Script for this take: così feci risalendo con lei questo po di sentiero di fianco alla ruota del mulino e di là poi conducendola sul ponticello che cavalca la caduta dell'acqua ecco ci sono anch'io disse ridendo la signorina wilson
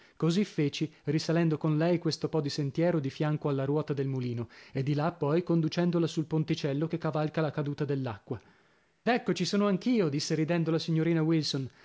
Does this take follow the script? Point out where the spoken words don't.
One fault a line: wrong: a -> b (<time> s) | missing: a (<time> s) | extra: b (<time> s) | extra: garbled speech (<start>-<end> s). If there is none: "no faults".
no faults